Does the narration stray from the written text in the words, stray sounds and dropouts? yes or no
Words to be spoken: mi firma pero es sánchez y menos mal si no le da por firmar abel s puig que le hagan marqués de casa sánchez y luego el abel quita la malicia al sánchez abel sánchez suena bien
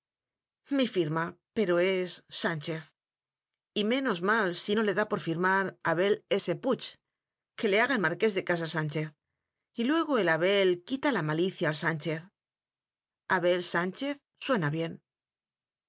no